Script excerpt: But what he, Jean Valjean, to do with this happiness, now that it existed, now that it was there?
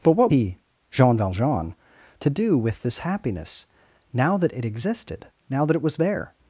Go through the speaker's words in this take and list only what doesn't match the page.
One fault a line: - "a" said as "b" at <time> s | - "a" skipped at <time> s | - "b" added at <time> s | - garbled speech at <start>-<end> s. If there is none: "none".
none